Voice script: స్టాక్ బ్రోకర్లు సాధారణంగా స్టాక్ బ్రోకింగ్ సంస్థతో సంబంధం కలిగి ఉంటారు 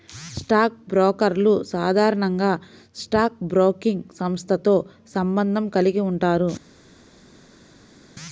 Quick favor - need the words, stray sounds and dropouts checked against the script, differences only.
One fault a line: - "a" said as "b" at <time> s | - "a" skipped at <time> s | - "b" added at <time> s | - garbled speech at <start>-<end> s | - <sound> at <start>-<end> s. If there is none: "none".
none